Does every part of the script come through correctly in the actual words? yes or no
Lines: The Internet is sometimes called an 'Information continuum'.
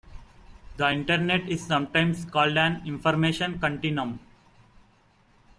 yes